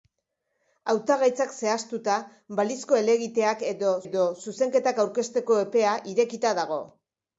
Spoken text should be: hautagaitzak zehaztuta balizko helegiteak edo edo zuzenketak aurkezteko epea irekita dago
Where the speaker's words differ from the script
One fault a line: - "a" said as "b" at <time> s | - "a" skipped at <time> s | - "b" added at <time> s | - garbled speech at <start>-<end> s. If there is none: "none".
none